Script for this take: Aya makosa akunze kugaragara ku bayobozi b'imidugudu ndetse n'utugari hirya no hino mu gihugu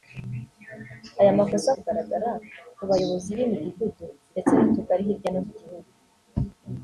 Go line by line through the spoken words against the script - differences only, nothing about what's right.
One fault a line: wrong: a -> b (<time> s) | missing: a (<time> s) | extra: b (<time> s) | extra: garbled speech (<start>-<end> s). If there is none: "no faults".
missing: akunze (1.7 s)
missing: hino (5.4 s)